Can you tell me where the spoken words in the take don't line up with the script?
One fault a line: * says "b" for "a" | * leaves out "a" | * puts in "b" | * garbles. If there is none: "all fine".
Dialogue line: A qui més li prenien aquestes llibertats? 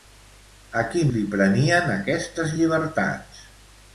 * leaves out "més"